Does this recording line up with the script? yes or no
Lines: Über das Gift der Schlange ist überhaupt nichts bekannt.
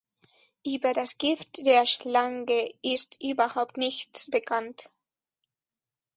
yes